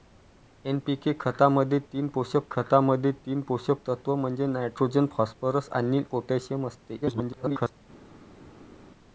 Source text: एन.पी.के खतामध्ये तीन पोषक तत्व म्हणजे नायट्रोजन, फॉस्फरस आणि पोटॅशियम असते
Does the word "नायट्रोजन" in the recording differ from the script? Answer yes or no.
no